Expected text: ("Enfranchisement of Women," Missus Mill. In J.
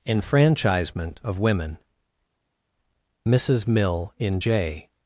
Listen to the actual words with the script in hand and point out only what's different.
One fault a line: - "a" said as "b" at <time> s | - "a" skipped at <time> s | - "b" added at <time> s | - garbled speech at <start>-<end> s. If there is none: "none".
none